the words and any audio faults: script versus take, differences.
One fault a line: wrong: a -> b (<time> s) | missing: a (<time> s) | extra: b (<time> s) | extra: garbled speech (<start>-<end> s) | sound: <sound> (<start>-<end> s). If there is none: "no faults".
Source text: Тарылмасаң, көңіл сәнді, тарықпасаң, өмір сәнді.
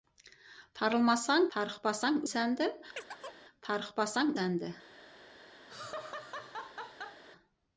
wrong: көңіл -> тарықпасаң (1.6 s)
sound: chirp (3.0-3.5 s)
missing: өмір (4.3 s)
sound: laugh (5.7-7.2 s)